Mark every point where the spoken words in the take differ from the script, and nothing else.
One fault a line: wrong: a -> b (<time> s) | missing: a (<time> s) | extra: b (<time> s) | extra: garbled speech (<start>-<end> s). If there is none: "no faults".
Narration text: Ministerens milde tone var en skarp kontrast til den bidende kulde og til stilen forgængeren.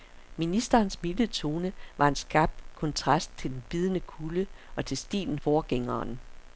no faults